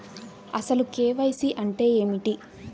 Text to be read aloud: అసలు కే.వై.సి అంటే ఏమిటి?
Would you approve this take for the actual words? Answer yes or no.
yes